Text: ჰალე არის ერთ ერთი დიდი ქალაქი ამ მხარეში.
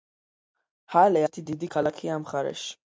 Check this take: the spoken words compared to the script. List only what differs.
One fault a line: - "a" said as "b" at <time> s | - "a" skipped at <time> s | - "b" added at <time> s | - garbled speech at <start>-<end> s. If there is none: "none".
- "არის ერთ" skipped at 1.2 s